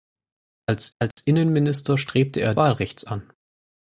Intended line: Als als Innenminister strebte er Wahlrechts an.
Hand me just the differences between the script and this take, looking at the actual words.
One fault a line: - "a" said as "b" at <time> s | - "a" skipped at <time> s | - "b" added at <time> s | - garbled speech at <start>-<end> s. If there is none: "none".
none